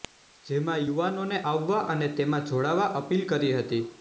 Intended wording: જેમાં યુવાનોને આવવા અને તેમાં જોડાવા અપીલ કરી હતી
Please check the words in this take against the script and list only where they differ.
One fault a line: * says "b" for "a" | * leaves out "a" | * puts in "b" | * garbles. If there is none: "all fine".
all fine